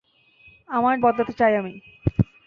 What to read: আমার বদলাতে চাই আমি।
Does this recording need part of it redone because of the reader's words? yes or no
no